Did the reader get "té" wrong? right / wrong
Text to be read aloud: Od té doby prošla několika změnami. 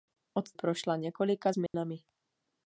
wrong